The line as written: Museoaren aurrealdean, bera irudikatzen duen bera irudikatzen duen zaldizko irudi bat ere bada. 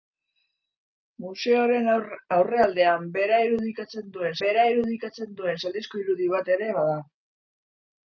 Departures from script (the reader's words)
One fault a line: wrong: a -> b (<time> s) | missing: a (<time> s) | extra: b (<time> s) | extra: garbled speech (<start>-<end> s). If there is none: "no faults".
no faults